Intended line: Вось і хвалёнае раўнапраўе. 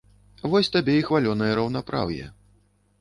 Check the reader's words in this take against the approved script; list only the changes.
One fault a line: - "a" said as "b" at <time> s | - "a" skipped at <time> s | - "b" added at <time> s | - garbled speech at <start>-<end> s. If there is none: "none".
- "табе" added at 0.8 s